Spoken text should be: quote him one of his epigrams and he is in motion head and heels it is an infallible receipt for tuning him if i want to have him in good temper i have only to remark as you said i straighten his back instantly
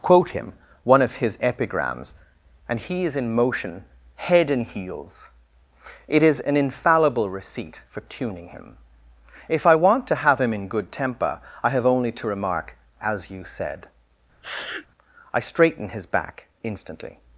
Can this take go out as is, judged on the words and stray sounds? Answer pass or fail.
fail